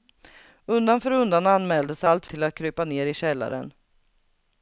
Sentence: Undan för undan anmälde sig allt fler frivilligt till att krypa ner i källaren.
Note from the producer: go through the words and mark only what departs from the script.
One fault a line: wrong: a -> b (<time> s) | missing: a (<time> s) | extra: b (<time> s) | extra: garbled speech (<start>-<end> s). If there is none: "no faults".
missing: fler frivilligt (2.3 s)